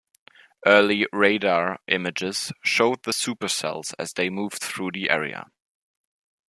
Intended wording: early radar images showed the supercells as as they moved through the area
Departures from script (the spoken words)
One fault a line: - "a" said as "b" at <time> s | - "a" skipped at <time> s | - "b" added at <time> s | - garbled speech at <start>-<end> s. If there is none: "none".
- "as" skipped at 4.1 s